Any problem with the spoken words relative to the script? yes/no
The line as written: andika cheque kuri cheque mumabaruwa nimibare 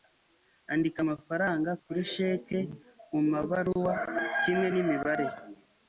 yes